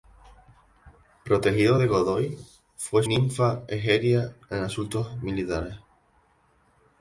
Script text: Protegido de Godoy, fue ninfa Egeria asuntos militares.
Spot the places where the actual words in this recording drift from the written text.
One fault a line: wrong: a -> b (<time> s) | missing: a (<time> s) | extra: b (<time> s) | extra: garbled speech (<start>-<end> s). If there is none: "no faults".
no faults